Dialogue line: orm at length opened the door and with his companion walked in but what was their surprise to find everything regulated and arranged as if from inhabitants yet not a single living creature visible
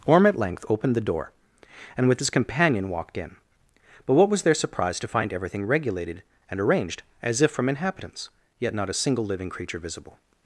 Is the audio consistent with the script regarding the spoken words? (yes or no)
yes